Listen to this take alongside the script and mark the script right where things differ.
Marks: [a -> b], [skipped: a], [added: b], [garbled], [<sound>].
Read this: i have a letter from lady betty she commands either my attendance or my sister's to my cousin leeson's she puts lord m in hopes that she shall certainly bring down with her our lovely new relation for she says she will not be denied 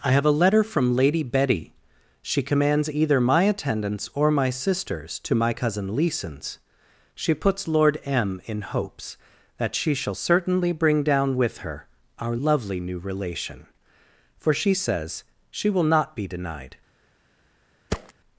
i have a letter from lady betty she commands either my attendance or my sister's to my cousin leeson's she puts lord m in hopes that she shall certainly bring down with her our lovely new relation for she says she will not be denied [thud]